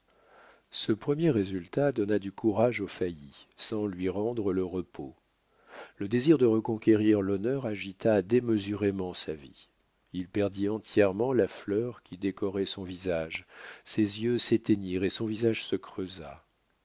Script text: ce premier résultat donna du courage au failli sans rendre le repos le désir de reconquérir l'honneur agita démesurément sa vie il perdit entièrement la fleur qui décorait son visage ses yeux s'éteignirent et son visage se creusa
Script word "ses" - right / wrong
right